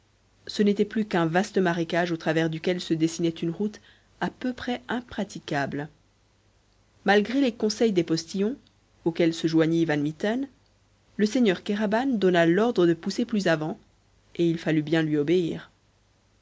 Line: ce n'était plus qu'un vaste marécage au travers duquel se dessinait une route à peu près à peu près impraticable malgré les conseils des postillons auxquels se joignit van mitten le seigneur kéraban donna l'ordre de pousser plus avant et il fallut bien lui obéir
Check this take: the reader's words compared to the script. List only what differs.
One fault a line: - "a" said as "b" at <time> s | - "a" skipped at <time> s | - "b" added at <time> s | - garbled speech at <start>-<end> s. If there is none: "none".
- "à peu près" skipped at 4.8 s